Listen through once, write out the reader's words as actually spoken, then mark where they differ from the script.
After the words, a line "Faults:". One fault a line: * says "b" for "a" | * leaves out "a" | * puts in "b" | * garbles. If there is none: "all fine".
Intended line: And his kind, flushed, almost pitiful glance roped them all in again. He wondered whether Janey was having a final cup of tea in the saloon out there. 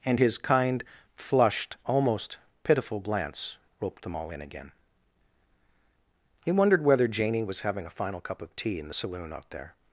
And his kind, flushed, almost pitiful glance roped them all in again. He wondered whether Janey was having a final cup of tea in the saloon out there.
Faults:
all fine